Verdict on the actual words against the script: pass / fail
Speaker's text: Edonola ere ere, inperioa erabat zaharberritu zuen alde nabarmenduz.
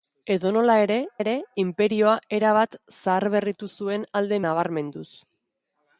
pass